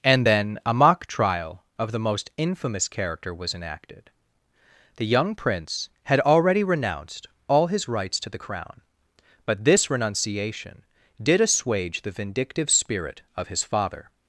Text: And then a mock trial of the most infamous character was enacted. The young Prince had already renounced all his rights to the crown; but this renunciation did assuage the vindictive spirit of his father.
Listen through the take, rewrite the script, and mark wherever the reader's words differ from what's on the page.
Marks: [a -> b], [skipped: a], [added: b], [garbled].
And then a mock trial of the most infamous character was enacted. The young Prince had already renounced all his rights to the crown; but this renunciation did assuage the vindictive spirit of his father.